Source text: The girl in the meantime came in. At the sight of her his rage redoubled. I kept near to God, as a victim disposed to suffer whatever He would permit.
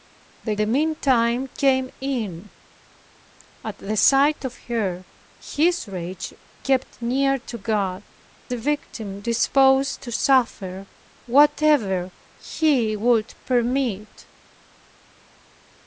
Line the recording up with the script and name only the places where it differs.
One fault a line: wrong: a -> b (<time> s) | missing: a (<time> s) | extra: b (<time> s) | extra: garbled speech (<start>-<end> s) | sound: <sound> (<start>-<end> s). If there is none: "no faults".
missing: girl in (0.6 s)
missing: redoubled I (6.3 s)
missing: as (8.0 s)